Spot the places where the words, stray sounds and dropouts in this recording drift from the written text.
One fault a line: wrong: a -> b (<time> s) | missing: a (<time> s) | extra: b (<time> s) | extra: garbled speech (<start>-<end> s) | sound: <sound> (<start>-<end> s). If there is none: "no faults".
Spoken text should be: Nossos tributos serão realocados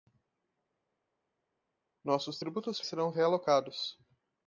no faults